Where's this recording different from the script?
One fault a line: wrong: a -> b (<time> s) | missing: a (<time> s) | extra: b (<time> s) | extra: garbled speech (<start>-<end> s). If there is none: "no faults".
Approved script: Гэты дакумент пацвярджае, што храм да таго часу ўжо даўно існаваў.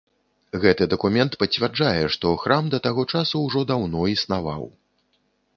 no faults